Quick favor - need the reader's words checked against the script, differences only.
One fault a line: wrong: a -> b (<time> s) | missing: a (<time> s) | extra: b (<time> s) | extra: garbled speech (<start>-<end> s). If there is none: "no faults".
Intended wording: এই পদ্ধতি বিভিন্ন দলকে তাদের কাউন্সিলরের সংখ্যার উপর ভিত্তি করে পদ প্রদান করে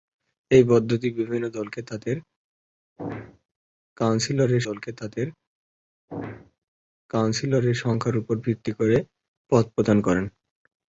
extra: দলকে তাদের কাউন্সিলরের (4.7 s)